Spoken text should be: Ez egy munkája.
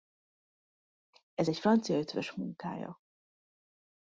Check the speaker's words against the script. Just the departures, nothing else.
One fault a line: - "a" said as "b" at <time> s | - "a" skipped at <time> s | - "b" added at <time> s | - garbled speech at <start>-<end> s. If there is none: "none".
- "francia ötvös" added at 1.6 s